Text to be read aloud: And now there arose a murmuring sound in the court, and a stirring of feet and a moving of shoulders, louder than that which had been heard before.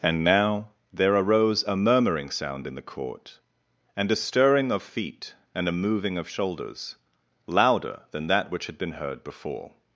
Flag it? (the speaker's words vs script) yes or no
no